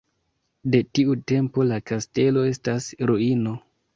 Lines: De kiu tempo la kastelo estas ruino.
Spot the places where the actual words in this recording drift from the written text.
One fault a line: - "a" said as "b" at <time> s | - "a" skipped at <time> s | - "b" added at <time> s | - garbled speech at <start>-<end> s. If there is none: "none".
- "kiu" said as "tiu" at 1.0 s